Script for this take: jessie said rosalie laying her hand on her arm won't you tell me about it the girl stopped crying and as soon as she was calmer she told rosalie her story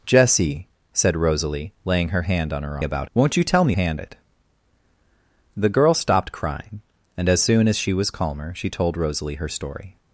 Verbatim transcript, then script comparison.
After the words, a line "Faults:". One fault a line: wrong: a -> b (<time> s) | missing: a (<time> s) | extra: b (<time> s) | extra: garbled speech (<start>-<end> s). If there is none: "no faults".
jessie said rosalie laying her hand on her about won't you tell me hand it the girl stopped crying and as soon as she was calmer she told rosalie her story
Faults:
wrong: arm -> about (2.8 s)
wrong: about -> hand (3.7 s)